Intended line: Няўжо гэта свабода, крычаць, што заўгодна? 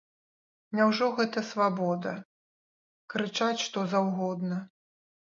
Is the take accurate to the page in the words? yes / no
yes